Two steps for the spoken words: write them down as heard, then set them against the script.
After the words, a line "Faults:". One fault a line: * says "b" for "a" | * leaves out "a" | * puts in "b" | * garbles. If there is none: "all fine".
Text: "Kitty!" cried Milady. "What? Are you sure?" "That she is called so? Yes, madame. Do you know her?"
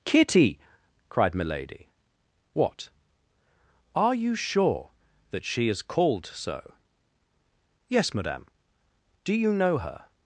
"Kitty!" cried Milady. "What? Are you sure?" "That she is called so? Yes, madame. Do you know her?"
Faults:
all fine